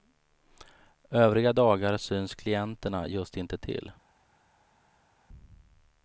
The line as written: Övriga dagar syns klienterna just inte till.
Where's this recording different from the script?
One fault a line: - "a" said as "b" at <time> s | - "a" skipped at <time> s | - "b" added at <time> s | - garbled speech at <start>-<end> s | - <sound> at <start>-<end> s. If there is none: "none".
none